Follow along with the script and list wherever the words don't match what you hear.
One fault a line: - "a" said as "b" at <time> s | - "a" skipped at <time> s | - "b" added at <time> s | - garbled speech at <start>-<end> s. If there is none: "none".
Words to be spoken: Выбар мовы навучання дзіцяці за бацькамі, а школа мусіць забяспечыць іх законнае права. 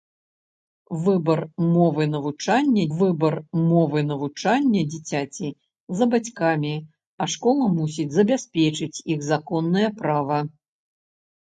- "выбар мовы навучання" added at 3.0 s